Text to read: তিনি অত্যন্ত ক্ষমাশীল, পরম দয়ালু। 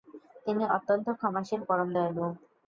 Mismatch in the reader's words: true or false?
false